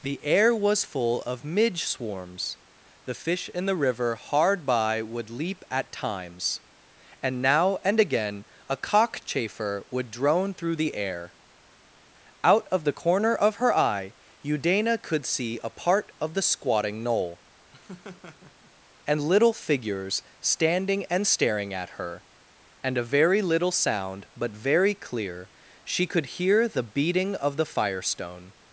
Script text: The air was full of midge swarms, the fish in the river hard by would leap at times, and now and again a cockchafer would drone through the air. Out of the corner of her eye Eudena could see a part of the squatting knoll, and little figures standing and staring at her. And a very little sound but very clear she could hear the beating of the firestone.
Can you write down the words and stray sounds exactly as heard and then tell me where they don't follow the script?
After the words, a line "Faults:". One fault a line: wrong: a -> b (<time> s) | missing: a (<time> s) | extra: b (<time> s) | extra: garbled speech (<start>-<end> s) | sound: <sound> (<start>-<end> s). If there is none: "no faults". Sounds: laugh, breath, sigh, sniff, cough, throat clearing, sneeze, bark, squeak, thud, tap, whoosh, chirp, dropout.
The air was full of midge swarms, the fish in the river hard by would leap at times, and now and again a cockchafer would drone through the air. Out of the corner of her eye Eudena could see a part of the squatting knoll, and little figures standing and staring at her. And a very little sound but very clear she could hear the beating of the firestone.
Faults:
sound: laugh (17.7-18.7 s)